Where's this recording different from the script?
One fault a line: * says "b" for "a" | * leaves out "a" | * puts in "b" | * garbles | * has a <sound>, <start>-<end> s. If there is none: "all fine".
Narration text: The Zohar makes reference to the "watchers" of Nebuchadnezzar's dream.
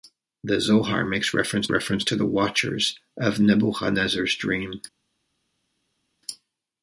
* puts in "reference"